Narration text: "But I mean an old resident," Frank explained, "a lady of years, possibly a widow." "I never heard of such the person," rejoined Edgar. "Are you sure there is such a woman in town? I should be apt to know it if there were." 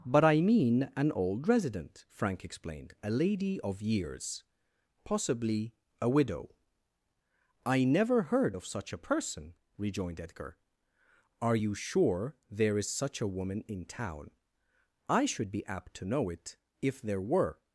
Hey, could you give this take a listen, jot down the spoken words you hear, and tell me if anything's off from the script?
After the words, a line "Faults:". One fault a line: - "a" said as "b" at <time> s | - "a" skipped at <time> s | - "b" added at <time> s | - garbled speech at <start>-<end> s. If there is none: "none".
"But I mean an old resident," Frank explained, "a lady of years, possibly a widow." "I never heard of such a person," rejoined Edgar. "Are you sure there is such a woman in town? I should be apt to know it if there were."
Faults:
- "the" said as "a" at 8.9 s